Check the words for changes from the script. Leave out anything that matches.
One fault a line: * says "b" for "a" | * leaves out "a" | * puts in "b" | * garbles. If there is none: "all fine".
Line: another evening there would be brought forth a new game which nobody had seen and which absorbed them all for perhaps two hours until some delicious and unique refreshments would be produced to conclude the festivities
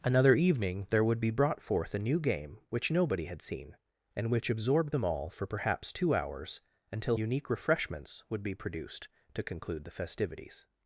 * leaves out "some delicious and"